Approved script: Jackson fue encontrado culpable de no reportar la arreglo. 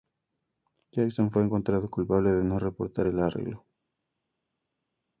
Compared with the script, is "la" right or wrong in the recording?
wrong